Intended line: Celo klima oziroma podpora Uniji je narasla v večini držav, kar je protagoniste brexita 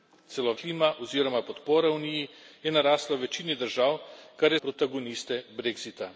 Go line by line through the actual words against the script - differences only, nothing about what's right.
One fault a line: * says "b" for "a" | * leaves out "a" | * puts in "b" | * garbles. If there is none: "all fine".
all fine